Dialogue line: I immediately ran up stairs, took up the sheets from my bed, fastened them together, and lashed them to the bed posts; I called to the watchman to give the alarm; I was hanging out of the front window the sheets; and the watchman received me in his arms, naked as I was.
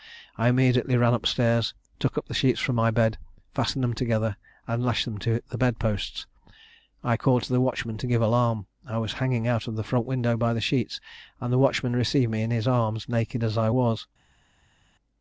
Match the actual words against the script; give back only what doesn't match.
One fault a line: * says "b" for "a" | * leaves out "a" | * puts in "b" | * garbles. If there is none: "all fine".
* puts in "by"